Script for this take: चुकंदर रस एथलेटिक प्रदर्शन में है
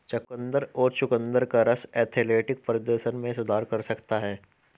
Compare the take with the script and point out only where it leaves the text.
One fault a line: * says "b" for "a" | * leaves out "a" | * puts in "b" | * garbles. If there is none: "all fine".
* puts in "और चुकंदर का"
* puts in "सुधार कर सकता"